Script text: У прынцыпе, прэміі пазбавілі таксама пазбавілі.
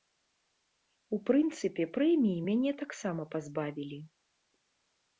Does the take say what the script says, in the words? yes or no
no